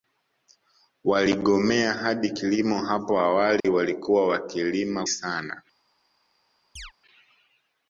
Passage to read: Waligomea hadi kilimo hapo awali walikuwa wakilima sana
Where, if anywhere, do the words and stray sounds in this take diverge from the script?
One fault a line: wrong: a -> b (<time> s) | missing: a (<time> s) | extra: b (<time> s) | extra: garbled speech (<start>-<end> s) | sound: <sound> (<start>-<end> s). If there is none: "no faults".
sound: dropout (3.6-3.6 s)
sound: chirp (6.8-6.9 s)